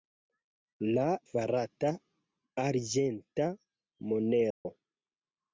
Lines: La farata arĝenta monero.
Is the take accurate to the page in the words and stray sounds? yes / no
no